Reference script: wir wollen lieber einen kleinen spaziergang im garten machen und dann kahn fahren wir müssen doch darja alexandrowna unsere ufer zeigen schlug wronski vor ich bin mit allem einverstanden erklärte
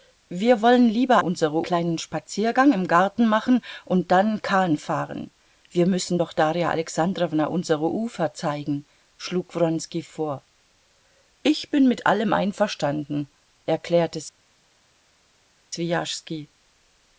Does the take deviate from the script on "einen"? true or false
true